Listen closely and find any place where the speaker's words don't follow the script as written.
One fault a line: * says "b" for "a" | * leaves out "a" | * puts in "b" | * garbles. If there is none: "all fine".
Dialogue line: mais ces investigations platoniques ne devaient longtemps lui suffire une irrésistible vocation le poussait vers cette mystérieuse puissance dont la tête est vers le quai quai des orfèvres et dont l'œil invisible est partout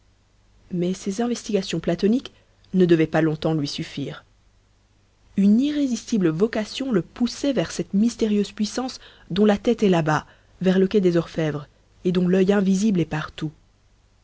* puts in "pas"
* puts in "là bas"
* leaves out "quai"